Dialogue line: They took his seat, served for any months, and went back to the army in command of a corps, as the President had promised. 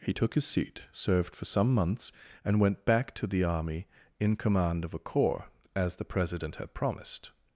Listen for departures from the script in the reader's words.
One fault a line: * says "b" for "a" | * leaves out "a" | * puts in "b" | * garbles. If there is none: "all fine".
* says "He" for "They"
* says "some" for "any"